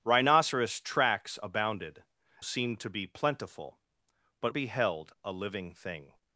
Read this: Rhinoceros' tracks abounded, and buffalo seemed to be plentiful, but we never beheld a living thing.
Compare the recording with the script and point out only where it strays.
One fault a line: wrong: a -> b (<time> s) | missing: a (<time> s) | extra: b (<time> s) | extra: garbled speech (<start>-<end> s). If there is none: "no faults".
missing: and buffalo (2.0 s)
missing: we never (4.5 s)